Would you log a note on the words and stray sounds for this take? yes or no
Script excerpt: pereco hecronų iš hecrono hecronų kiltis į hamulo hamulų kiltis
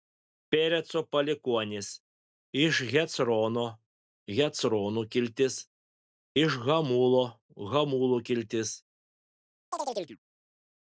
yes